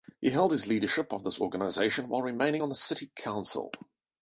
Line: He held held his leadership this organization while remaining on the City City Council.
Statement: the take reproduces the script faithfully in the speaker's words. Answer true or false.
false